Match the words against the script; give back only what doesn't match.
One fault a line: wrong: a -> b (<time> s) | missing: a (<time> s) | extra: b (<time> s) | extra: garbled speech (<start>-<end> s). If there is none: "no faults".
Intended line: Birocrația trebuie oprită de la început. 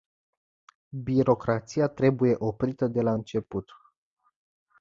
no faults